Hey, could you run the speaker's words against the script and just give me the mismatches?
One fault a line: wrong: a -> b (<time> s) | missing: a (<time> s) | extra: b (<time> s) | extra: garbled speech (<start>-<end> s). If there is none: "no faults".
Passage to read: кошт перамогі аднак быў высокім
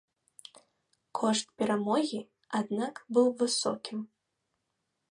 no faults